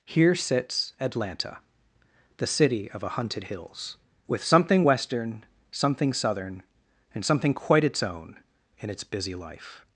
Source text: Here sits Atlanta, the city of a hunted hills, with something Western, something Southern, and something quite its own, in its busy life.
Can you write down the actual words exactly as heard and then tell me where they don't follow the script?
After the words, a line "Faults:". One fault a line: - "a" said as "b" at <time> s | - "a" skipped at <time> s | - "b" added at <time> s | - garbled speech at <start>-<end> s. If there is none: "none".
Here sits Atlanta, the city of a hunted hills, with something Western, something Southern, and something quite its own, in its busy life.
Faults:
none